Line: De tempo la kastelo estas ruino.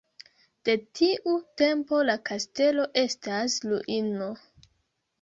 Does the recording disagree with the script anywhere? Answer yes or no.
yes